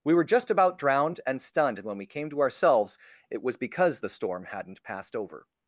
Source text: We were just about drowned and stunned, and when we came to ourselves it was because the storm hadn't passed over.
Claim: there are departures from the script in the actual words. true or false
false